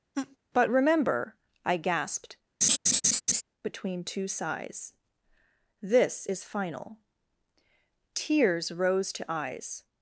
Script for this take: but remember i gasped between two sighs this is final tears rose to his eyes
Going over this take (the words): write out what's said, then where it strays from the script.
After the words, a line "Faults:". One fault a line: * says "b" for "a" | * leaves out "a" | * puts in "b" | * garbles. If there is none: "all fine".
but remember i gasped between two sighs this is final tears rose to eyes
Faults:
* leaves out "his"